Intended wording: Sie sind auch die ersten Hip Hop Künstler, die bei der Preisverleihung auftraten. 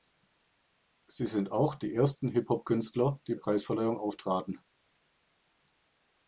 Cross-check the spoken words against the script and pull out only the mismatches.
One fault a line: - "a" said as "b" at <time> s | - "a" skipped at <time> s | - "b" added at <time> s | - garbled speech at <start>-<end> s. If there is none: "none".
- "bei der" skipped at 3.4 s